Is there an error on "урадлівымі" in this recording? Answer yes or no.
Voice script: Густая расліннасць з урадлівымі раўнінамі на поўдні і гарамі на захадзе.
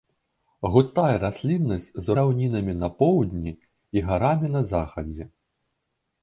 yes